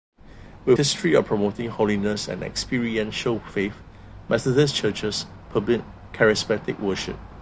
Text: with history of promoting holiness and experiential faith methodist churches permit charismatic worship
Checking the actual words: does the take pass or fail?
pass